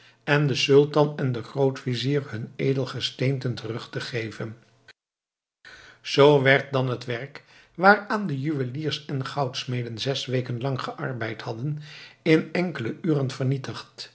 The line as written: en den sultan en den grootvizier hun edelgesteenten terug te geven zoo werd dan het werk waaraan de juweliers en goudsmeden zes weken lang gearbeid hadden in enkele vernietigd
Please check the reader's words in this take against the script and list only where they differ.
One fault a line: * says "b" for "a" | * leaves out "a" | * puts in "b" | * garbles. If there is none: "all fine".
* puts in "uren"